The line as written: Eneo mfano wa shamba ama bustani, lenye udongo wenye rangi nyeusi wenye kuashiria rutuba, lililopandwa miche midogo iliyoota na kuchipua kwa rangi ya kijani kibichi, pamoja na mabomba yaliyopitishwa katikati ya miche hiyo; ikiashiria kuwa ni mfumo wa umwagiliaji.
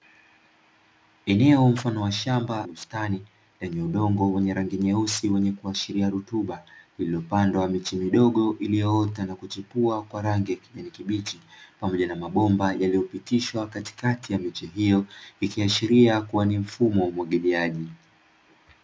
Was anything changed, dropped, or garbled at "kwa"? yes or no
no